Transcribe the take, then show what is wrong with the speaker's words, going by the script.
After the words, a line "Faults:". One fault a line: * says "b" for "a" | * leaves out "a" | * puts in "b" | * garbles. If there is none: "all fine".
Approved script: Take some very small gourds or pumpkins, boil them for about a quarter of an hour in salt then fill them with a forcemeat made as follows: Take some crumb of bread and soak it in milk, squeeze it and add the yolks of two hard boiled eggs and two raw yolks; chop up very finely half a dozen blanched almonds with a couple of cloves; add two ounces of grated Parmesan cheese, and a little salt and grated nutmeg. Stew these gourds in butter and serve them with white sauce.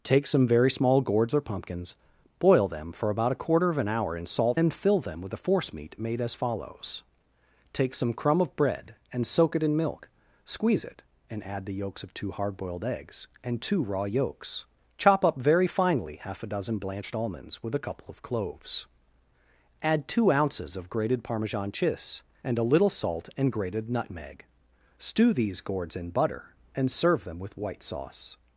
Take some very small gourds or pumpkins, boil them for about a quarter of an hour in salt then fill them with a forcemeat made as follows: Take some crumb of bread and soak it in milk, squeeze it and add the yolks of two hard boiled eggs and two raw yolks; chop up very finely half a dozen blanched almonds with a couple of cloves; add two ounces of grated Parmesan cheese, and a little salt and grated nutmeg. Stew these gourds in butter and serve them with white sauce.
Faults:
all fine